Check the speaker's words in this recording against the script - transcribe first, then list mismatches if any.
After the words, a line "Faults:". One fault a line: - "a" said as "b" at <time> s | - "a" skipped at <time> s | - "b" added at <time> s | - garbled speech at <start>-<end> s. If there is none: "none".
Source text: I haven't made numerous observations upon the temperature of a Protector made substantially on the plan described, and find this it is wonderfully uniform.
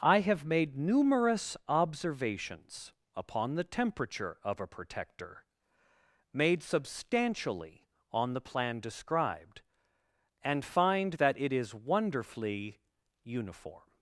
I have made numerous observations upon the temperature of a Protector made substantially on the plan described, and find that it is wonderfully uniform.
Faults:
- "haven't" said as "have" at 0.2 s
- "this" said as "that" at 11.1 s